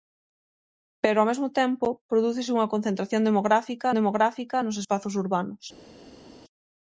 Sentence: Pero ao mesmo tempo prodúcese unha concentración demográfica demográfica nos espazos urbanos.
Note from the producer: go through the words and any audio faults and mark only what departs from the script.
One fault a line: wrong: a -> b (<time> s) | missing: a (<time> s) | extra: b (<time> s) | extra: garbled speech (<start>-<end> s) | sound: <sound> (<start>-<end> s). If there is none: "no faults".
no faults